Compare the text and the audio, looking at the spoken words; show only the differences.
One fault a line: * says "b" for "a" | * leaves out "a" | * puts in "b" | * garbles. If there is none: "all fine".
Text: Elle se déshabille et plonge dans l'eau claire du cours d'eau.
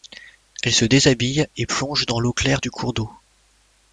all fine